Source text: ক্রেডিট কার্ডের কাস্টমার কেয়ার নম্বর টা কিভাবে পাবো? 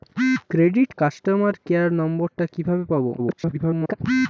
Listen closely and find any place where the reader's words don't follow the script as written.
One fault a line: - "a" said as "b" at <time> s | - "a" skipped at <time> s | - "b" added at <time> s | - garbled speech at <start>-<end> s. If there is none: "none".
- "কার্ডের" skipped at 0.9 s
- garbled speech at 3.2-3.9 s